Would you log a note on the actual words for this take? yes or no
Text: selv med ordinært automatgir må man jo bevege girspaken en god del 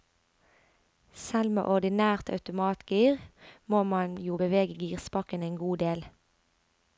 no